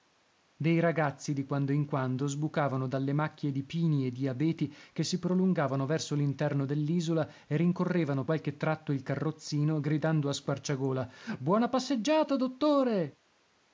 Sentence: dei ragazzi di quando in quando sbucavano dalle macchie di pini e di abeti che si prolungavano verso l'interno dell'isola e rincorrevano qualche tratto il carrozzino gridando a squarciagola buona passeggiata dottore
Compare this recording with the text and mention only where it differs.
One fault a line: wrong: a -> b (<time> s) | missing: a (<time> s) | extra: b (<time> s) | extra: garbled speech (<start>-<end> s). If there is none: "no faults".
no faults